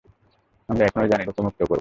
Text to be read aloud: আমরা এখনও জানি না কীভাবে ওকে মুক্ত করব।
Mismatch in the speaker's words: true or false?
true